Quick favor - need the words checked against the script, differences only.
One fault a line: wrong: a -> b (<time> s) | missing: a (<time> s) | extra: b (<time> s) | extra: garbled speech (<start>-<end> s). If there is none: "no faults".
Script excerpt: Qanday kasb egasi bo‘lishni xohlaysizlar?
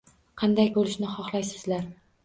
missing: kasb egasi (0.7 s)